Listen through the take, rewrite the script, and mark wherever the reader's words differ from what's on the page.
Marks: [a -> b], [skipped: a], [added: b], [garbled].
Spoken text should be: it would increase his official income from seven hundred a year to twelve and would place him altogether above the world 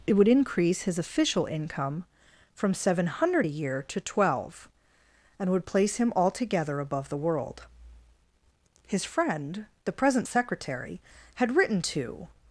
it would increase his official income from seven hundred a year to twelve and would place him altogether above the world [added: his friend the present secretary had written to]